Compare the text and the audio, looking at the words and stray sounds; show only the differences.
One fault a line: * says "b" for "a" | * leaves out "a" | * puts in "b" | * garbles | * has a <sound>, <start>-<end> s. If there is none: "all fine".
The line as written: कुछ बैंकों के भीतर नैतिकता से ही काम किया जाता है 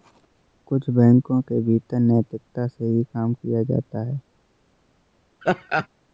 * has a laugh, 5.4-5.9 s